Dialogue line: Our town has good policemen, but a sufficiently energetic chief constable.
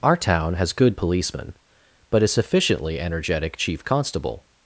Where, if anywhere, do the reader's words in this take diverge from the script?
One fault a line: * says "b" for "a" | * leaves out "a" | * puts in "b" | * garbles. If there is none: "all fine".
all fine